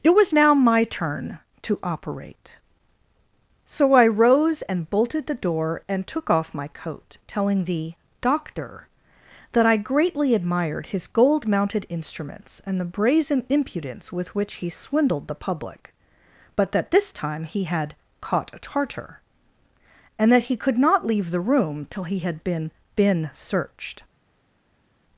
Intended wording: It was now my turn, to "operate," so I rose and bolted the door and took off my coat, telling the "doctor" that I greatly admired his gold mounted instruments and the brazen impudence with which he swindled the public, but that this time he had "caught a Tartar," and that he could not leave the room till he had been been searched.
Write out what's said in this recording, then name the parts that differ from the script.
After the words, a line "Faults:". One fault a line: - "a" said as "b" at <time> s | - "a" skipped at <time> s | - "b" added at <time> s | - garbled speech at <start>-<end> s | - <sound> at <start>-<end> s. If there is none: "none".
It was now my turn, to "operate," so I rose and bolted the door and took off my coat, telling the "doctor" that I greatly admired his gold mounted instruments and the brazen impudence with which he swindled the public, but that this time he had "caught a Tartar," and that he could not leave the room till he had been been searched.
Faults:
none